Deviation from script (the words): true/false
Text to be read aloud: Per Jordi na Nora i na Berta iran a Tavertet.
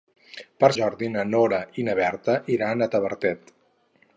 false